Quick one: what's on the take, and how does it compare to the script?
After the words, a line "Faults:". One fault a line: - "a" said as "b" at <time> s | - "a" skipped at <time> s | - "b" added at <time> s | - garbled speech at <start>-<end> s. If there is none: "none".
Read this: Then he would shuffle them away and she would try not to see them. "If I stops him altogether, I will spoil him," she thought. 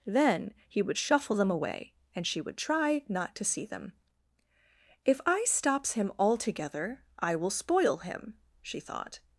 Then he would shuffle them away and she would try not to see them. "If I stops him altogether, I will spoil him," she thought.
Faults:
none